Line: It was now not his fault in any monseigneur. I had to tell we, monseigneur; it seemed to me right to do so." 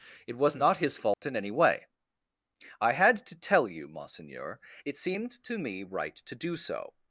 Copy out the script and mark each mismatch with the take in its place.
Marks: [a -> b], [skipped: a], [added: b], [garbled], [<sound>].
It was [skipped: now] not his fault [dropout] in any [monseigneur. -> way] I had to tell [we, -> you] monseigneur; it seemed to me right to do so."